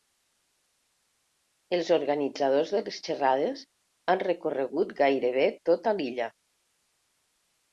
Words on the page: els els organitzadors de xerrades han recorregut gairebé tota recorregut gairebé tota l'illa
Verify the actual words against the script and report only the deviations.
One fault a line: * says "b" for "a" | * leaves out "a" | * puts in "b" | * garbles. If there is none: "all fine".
* leaves out "els"
* puts in "les"
* leaves out "recorregut gairebé tota"